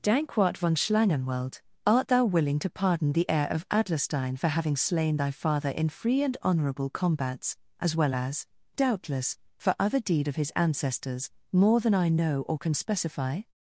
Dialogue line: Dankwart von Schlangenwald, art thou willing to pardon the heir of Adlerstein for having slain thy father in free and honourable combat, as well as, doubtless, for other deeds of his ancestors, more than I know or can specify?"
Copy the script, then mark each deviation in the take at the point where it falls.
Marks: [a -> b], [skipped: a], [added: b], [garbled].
Dankwart von Schlangenwald, art thou willing to pardon the heir of Adlerstein for having slain thy father in free and honourable [combat, -> combats] as well as, doubtless, for other [deeds -> deed] of his ancestors, more than I know or can specify?"